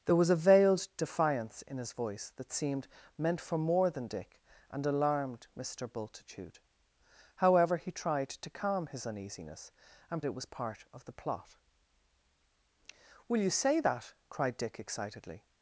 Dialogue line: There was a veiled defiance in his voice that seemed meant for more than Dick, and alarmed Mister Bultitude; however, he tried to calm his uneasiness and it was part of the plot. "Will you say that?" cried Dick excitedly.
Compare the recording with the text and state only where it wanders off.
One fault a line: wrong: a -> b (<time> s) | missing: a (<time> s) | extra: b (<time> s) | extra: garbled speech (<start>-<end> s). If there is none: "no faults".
no faults